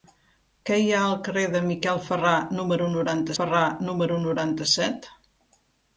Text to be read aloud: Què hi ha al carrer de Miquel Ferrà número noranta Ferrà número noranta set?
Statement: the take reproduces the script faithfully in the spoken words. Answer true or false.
true